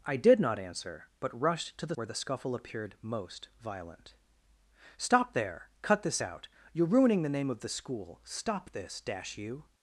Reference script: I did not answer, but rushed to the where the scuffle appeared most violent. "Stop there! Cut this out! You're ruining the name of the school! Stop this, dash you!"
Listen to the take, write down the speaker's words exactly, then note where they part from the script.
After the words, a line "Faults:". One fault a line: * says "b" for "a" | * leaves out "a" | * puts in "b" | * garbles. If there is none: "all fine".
I did not answer, but rushed to the where the scuffle appeared most violent. "Stop there! Cut this out! You're ruining the name of the school! Stop this, dash you!"
Faults:
all fine